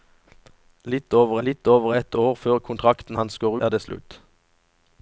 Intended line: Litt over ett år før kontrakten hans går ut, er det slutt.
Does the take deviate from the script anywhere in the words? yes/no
yes